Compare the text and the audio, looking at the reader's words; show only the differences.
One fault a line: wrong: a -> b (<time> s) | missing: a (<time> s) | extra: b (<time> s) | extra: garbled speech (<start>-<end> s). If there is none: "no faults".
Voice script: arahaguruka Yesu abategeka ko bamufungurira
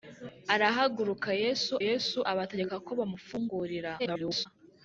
extra: Yesu (1.9 s)
extra: garbled speech (4.0-4.5 s)